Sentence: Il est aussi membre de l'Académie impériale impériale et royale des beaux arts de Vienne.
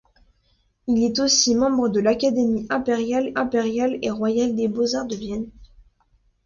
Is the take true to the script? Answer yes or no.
yes